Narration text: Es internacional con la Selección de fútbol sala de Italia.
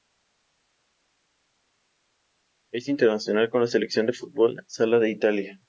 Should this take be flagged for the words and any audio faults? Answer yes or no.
no